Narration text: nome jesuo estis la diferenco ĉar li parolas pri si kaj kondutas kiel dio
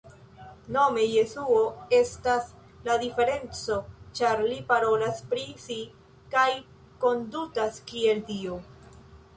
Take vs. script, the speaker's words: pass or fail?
fail